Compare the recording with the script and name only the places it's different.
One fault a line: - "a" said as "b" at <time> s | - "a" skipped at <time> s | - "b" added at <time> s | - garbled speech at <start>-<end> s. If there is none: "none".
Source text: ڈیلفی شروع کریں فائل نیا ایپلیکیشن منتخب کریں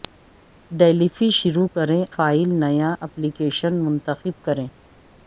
none